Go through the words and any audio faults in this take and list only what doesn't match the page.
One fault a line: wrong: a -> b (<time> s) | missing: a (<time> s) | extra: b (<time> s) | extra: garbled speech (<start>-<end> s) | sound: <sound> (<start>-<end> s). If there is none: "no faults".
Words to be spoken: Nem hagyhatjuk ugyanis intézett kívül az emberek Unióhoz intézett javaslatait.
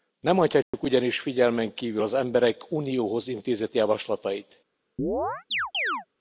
sound: dropout (0.6-0.7 s)
wrong: intézett -> figyelmen (1.2 s)
sound: chirp (5.0-6.1 s)